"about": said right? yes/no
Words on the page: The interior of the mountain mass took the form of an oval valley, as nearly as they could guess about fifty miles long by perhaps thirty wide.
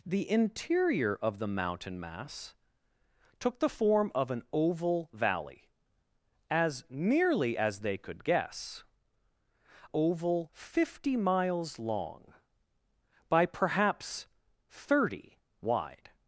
no